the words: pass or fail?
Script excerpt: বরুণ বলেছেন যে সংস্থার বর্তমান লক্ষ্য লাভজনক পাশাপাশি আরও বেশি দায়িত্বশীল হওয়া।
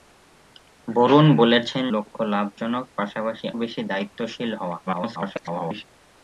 fail